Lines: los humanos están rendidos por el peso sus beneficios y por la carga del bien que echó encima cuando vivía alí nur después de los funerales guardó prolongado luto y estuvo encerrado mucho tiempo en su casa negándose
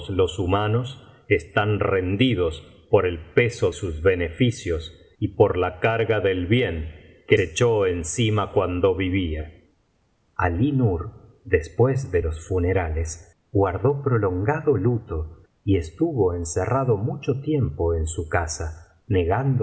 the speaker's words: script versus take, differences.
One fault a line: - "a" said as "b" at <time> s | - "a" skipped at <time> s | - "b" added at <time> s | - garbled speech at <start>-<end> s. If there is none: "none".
none